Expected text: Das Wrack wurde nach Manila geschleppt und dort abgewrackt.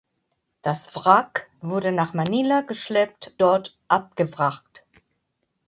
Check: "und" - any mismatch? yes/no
yes